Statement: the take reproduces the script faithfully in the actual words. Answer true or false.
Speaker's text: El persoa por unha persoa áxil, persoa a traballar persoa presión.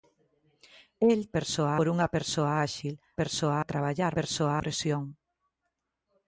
true